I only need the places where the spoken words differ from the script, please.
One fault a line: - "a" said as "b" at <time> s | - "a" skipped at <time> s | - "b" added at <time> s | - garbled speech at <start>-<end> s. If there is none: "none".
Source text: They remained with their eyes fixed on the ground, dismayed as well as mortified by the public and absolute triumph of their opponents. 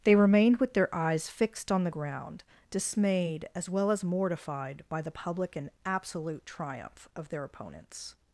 none